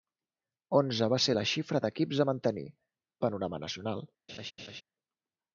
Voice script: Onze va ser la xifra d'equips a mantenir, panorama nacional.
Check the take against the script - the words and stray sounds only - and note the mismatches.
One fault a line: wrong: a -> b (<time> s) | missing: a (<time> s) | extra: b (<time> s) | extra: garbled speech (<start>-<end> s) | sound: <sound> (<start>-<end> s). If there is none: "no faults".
sound: laugh (4.3-4.8 s)